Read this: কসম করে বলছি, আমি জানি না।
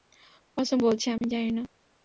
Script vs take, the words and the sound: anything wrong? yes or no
yes